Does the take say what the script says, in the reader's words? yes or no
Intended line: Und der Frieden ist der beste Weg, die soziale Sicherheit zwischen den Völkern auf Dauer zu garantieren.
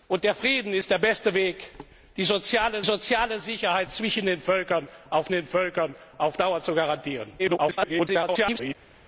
no